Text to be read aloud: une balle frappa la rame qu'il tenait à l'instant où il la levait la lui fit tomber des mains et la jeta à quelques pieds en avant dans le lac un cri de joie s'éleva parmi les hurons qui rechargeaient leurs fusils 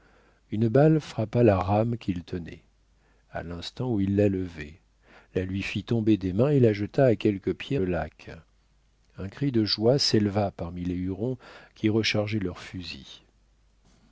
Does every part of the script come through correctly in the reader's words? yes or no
no